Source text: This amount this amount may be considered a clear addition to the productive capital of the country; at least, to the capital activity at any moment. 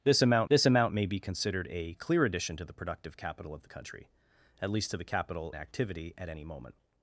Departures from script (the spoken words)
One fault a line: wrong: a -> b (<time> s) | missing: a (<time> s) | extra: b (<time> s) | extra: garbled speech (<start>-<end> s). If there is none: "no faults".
no faults